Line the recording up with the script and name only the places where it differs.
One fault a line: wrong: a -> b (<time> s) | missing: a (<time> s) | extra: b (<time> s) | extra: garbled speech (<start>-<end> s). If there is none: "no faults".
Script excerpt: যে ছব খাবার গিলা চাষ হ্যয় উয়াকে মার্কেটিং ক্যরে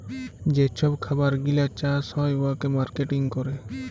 no faults